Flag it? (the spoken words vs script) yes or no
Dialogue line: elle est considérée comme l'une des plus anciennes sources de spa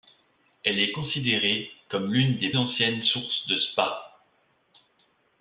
yes